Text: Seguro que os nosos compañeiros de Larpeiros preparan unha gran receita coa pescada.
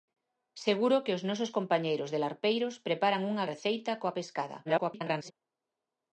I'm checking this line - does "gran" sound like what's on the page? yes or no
no